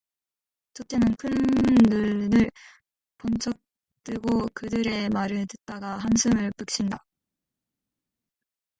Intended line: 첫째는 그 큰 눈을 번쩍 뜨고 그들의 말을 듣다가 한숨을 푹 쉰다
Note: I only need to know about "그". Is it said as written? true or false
false